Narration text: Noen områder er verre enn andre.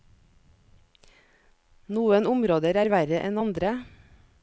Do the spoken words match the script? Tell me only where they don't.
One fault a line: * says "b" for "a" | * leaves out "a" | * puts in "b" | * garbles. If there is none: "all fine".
all fine